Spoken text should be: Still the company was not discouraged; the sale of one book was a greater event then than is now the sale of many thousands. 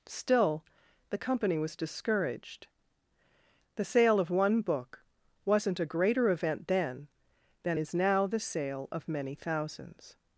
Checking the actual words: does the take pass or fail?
fail